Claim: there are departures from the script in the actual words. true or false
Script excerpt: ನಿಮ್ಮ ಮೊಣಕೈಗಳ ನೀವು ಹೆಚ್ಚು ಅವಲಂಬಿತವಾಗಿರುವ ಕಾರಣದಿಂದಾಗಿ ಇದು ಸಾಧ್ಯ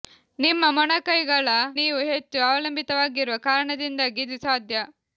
false